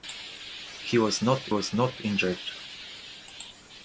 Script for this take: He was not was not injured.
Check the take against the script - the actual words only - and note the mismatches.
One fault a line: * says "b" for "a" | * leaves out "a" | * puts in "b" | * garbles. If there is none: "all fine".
all fine